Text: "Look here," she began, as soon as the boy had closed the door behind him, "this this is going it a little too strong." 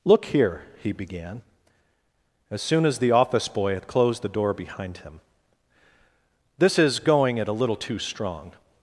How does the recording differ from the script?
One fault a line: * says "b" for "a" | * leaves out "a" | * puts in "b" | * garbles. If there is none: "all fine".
* says "he" for "she"
* puts in "office"
* leaves out "this"